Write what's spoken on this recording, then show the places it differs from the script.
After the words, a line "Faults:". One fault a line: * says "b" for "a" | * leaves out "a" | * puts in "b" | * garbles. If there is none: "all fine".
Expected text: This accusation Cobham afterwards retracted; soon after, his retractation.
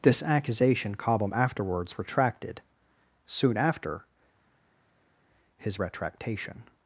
This accusation Cobham afterwards retracted; soon after, his retractation.
Faults:
all fine